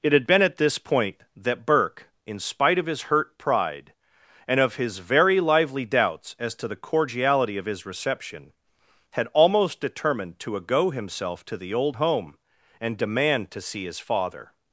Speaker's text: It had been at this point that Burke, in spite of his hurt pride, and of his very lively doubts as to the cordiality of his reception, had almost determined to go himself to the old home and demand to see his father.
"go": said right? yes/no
no